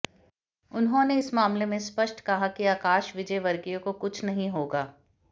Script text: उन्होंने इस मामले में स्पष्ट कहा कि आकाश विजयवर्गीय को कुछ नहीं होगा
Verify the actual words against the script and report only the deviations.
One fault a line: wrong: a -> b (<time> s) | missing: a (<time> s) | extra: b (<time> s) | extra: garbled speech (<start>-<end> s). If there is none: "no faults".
no faults